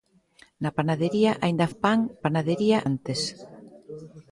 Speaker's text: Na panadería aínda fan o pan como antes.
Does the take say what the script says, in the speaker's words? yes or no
no